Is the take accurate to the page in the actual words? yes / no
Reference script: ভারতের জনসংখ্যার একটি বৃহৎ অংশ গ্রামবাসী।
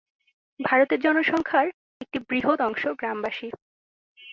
yes